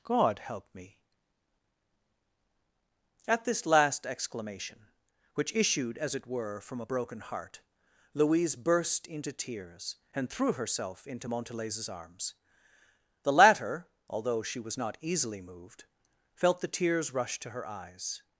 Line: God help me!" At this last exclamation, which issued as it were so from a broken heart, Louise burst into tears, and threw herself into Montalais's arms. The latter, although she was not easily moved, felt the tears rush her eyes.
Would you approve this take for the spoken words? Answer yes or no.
no